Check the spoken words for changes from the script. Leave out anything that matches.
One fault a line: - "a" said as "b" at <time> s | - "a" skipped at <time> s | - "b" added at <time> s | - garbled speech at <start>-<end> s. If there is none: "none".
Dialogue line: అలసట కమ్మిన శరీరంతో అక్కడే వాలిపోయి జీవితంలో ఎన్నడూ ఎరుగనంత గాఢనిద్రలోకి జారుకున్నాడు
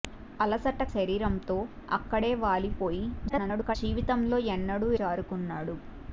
- "కమ్మిన" skipped at 0.8 s
- garbled speech at 3.3-3.8 s
- "ఎరుగనంత గాఢనిద్రలోకి" skipped at 4.9 s